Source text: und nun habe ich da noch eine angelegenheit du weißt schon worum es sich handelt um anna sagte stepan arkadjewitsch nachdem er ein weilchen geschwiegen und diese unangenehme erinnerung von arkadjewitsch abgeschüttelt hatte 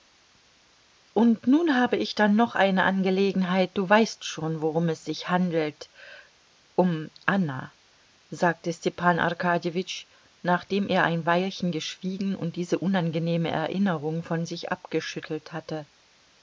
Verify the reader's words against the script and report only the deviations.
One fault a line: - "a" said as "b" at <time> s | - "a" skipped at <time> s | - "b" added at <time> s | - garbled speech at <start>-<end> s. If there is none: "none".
- "arkadjewitsch" said as "sich" at 14.4 s